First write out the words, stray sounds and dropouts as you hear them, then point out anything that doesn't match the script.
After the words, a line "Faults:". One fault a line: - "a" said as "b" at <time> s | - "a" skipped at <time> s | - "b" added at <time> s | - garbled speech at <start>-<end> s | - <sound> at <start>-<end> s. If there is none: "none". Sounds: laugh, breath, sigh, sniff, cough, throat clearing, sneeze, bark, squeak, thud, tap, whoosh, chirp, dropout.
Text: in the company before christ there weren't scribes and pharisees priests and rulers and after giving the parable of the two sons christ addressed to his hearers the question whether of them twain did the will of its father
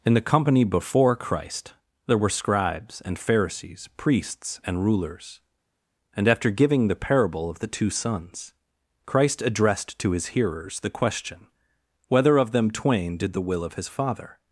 in the company before christ there were scribes and pharisees priests and rulers and after giving the parable of the two sons christ addressed to his hearers the question whether of them twain did the will of his father
Faults:
- "weren't" said as "were" at 2.2 s
- "its" said as "his" at 13.7 s